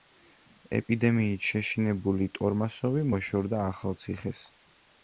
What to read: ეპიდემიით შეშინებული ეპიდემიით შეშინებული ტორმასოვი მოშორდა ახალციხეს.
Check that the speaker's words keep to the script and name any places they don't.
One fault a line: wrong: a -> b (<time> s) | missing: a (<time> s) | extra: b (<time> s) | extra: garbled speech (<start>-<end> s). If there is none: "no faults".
missing: ეპიდემიით შეშინებული (2.3 s)